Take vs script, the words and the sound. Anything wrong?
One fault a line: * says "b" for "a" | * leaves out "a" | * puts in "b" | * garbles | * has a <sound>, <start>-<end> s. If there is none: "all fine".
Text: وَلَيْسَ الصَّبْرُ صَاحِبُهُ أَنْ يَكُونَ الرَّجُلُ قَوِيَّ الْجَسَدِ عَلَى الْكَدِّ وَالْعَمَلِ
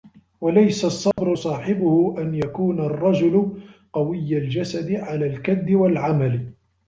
* has a dropout, 1.1-1.2 s